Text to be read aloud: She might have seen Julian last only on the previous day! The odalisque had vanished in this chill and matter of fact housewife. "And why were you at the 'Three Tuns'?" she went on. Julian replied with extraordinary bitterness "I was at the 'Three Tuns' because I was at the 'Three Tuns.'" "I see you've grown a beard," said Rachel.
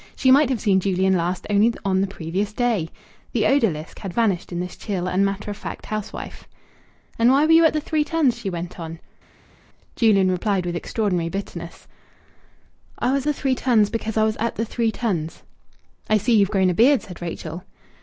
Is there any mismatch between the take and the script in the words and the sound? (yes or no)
yes